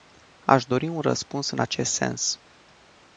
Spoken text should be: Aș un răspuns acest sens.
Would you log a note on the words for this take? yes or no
yes